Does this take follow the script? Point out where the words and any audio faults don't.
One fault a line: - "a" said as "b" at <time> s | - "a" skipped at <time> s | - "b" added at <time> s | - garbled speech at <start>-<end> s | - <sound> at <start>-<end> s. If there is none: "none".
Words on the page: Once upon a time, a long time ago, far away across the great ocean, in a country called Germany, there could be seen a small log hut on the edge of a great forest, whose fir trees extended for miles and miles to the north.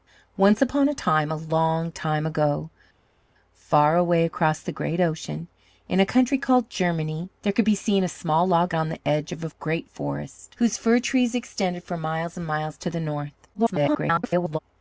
- "hut" skipped at 8.7 s
- garbled speech at 13.5-14.6 s